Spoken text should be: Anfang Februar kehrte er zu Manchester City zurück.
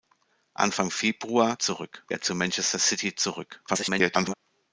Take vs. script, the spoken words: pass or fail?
fail